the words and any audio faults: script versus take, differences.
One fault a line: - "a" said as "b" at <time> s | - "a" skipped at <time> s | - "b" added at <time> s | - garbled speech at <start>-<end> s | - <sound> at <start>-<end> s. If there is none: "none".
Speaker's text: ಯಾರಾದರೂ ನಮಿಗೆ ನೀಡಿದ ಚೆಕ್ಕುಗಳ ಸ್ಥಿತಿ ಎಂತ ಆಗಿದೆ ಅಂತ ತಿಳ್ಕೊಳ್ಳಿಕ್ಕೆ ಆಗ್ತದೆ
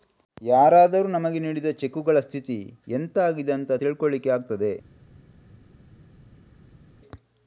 none